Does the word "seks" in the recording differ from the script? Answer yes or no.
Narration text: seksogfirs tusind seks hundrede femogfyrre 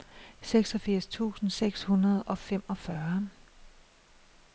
no